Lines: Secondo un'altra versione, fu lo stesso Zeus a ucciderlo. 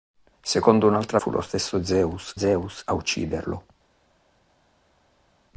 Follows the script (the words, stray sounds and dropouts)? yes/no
no